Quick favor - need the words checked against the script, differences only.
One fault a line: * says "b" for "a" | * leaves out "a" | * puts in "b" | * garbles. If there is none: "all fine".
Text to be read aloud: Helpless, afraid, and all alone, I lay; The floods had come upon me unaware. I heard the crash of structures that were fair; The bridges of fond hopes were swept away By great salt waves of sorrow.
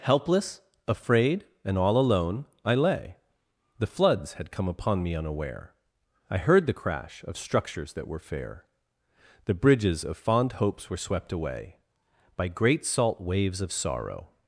all fine